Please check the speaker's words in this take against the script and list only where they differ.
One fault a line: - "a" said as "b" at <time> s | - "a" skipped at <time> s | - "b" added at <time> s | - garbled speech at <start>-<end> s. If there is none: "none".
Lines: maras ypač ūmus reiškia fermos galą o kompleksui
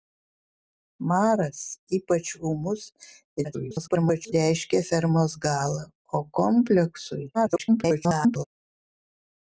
- garbled speech at 3.4-4.3 s
- garbled speech at 7.3-8.4 s